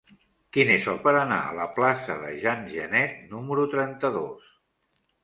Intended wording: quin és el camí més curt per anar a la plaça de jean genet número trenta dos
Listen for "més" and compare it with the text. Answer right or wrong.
wrong